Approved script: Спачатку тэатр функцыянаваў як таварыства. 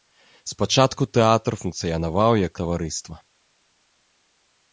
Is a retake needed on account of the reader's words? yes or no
no